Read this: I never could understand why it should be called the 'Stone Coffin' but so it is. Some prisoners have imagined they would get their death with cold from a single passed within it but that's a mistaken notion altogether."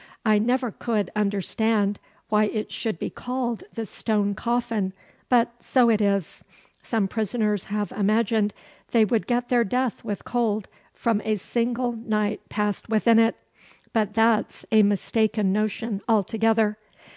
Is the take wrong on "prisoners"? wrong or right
right